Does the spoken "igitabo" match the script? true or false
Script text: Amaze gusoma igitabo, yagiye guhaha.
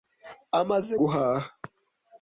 false